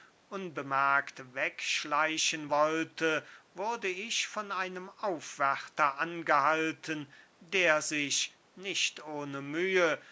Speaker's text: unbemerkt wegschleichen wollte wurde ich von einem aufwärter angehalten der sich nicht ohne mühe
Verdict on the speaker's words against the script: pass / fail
pass